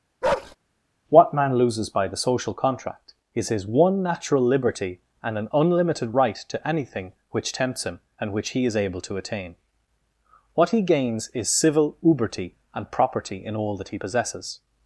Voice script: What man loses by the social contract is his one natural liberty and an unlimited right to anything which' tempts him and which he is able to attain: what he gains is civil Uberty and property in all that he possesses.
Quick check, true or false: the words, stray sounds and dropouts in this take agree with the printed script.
false